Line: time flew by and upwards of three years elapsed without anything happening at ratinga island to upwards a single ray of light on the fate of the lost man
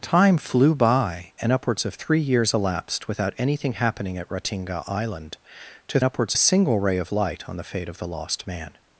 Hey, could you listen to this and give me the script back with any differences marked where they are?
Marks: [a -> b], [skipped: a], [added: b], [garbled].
time flew by and upwards of three years elapsed without anything happening at ratinga island to upwards a single ray of light on the fate of the lost man